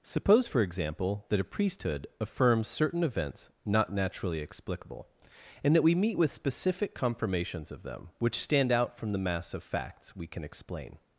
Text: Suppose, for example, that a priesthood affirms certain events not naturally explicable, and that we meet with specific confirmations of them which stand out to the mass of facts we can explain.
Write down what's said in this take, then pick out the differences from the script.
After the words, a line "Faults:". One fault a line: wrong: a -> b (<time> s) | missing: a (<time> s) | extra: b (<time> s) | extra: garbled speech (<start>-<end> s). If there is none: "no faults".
Suppose, for example, that a priesthood affirms certain events not naturally explicable, and that we meet with specific confirmations of them which stand out from the mass of facts we can explain.
Faults:
wrong: to -> from (9.0 s)